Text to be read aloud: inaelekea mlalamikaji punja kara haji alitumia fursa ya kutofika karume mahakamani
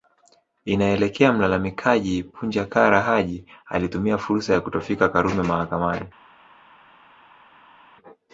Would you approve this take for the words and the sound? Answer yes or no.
yes